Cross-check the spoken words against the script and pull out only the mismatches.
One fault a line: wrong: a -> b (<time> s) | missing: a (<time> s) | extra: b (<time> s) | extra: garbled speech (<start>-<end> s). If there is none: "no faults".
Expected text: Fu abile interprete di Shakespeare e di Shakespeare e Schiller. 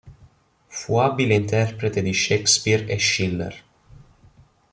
missing: di Shakespeare e (3.0 s)